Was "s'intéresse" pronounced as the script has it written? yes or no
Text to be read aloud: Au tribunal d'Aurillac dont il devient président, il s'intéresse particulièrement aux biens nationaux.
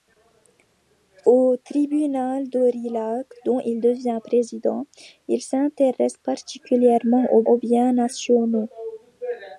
yes